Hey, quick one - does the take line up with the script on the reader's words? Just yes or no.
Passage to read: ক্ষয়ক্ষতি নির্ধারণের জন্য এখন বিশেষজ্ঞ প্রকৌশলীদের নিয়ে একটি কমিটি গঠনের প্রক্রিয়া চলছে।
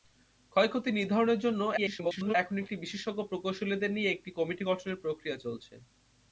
no